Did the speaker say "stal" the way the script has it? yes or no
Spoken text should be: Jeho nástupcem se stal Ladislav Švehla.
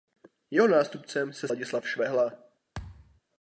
no